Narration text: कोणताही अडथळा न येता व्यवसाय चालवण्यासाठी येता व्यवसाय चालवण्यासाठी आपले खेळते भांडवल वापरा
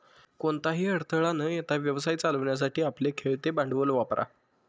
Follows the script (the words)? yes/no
no